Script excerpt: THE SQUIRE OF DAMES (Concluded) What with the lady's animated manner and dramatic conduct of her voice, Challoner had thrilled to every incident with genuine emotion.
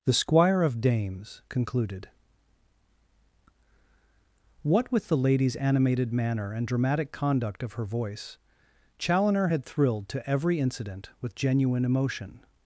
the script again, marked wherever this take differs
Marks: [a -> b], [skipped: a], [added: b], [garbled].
THE SQUIRE OF DAMES (Concluded) What with the lady's animated manner and dramatic conduct of her voice, Challoner had thrilled to every incident with genuine emotion.